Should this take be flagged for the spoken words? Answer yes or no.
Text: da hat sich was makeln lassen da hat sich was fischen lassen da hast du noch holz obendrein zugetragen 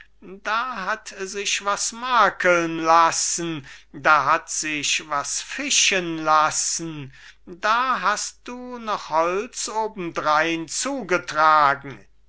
no